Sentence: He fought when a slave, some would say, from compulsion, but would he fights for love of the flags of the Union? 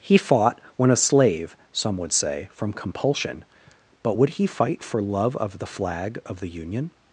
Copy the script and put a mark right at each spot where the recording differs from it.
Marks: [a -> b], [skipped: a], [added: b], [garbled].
He fought when a slave, some would say, from compulsion, but would he [fights -> fight] for love of the [flags -> flag] of the Union?